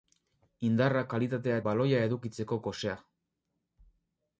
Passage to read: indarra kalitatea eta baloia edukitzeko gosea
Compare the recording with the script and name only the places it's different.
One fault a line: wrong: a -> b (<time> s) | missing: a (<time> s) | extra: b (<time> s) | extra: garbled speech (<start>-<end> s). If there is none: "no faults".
missing: eta (1.6 s)